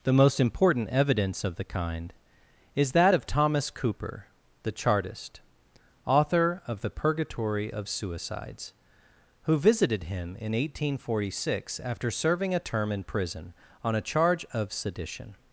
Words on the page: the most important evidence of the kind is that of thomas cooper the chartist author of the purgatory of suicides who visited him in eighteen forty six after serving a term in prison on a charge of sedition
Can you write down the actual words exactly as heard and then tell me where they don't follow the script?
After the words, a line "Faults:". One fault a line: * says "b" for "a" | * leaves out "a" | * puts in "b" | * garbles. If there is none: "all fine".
the most important evidence of the kind is that of thomas cooper the chartist author of the purgatory of suicides who visited him in eighteen forty six after serving a term in prison on a charge of sedition
Faults:
all fine